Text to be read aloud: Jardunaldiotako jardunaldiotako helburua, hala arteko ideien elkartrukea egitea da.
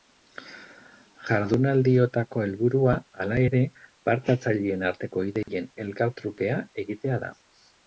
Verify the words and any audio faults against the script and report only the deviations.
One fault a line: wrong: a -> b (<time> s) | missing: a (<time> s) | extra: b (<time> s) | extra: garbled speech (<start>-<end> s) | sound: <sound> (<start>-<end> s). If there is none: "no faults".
missing: jardunaldiotako (2.4 s)
extra: ere parte hartzaileen (3.5 s)
sound: dropout (5.4-5.5 s)